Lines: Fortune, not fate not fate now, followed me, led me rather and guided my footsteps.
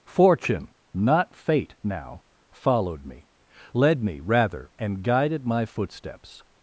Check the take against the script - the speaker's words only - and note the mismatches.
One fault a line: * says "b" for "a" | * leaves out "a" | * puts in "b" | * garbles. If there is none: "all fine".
* leaves out "not fate"